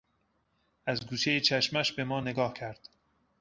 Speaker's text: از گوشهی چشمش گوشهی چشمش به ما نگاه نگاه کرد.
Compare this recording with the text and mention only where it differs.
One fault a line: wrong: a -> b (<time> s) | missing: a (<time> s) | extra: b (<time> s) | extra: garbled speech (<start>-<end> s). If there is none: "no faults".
missing: گوشهی چشمش (1.9 s)
missing: نگاه (2.5 s)